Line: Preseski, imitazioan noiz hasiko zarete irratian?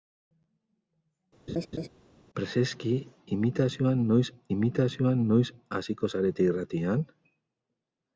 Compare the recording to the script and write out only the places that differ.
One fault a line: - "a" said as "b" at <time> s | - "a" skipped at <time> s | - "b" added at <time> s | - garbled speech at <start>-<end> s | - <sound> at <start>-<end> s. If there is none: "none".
- laugh at 1.5-1.9 s
- "imitazioan noiz" added at 4.6 s